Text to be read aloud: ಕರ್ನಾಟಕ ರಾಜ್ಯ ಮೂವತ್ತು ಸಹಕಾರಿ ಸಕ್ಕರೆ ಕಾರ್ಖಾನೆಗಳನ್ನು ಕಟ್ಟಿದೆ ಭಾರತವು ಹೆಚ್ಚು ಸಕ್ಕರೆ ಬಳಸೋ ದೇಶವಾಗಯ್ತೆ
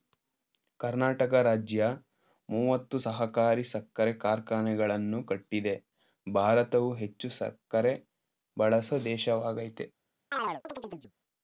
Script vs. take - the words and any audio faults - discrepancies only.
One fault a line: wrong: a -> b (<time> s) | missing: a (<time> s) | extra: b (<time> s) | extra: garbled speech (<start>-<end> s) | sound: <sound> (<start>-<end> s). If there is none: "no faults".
sound: chirp (10.3-11.1 s)